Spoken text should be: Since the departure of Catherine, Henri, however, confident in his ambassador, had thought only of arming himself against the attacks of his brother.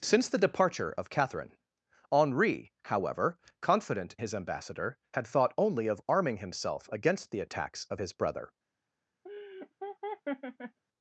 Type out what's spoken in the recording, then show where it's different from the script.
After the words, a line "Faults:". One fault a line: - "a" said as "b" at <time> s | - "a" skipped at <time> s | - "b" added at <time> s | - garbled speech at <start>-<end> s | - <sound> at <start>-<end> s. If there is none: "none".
Since the departure of Catherine, Henri, however, confident his ambassador, had thought only of arming himself against the attacks of his brother.
Faults:
- "in" skipped at 4.2 s
- laugh at 9.2-10.8 s